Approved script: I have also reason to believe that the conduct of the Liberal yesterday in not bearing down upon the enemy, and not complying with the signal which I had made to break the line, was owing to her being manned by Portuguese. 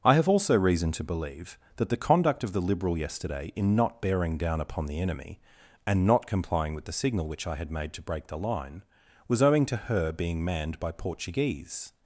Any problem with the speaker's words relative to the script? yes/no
no